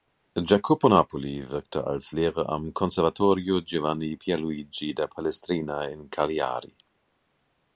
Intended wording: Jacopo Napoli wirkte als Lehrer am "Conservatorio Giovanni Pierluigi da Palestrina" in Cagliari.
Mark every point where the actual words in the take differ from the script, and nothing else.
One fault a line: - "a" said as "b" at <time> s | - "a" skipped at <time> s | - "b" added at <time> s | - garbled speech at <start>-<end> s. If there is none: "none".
none